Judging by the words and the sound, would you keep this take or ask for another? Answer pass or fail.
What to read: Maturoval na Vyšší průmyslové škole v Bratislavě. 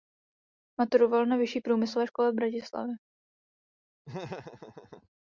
fail